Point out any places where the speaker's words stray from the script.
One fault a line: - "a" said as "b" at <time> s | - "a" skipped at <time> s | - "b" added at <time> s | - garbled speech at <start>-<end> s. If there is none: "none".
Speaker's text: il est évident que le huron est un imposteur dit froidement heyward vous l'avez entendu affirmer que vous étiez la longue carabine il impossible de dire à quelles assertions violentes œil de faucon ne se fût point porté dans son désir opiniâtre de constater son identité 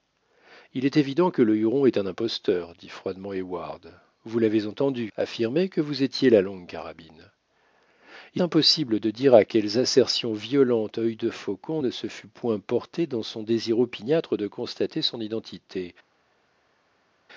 none